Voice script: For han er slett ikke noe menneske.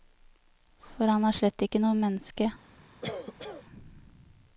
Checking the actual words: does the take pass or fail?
pass